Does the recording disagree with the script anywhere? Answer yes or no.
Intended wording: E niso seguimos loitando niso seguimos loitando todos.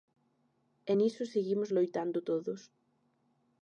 yes